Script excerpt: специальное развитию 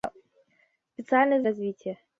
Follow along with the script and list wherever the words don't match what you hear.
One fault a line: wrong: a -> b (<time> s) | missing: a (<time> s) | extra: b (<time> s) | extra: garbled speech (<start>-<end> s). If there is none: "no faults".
no faults